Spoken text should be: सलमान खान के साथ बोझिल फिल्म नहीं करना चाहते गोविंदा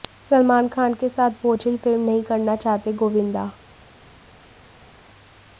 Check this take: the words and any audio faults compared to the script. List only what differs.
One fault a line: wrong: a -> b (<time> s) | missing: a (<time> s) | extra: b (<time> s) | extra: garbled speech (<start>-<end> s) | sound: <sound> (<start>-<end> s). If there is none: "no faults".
no faults